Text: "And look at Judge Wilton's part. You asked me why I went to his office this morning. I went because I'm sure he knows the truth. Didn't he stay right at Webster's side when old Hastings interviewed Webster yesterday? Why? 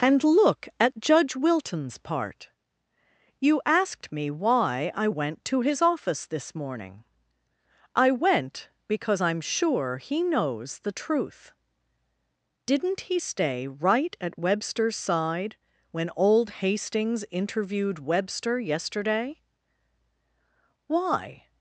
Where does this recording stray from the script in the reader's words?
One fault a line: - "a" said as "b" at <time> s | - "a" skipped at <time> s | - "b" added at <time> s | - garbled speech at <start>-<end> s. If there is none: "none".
none